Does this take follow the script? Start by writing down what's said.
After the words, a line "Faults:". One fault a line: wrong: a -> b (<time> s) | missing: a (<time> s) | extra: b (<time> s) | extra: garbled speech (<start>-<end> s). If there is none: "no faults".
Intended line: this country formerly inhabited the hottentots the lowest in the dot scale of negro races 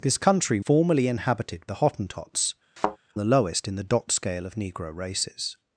this country formerly inhabited the hottentots the lowest in the dot scale of negro races
Faults:
no faults